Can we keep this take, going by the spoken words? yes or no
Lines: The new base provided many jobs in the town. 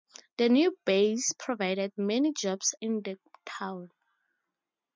yes